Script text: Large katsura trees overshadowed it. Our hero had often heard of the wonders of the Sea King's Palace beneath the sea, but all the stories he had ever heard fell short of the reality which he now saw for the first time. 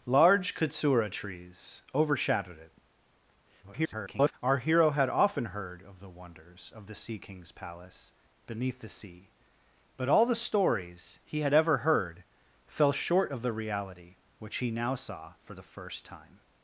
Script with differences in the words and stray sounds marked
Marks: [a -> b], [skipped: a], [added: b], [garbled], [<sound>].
Large katsura trees overshadowed it. [garbled] Our hero had often heard of the wonders of the Sea King's Palace beneath the sea, but all the stories he had ever heard fell short of the reality which he now saw for the first time.